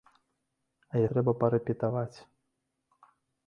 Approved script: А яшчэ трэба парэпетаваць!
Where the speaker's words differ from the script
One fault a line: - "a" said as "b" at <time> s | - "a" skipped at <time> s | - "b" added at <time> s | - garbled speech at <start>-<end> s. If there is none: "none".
- "яшчэ" skipped at 1.0 s